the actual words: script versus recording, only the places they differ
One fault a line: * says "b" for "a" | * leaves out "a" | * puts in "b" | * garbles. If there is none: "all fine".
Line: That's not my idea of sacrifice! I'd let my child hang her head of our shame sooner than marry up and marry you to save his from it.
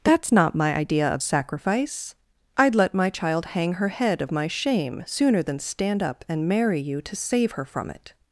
* says "my" for "our"
* says "stand" for "marry"
* says "her" for "his"